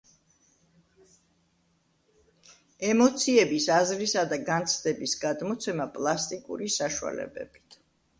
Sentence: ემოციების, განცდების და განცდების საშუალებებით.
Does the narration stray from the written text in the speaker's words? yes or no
yes